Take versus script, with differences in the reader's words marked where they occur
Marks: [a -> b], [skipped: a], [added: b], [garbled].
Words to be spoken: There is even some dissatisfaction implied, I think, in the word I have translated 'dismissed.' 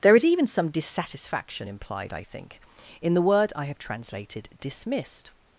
There is even some dissatisfaction implied, I think, in the word I have translated 'dismissed.'